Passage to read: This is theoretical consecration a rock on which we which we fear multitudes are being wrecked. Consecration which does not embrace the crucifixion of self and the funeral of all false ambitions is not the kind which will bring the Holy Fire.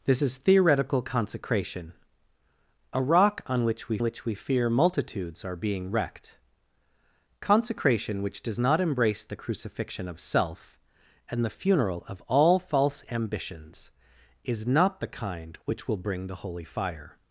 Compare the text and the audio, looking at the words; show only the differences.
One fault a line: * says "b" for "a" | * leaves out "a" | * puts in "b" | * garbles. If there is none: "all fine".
all fine